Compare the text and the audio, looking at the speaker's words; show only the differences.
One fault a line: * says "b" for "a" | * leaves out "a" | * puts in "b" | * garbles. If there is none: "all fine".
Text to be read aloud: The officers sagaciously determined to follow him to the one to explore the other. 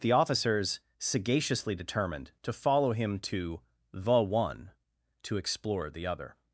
all fine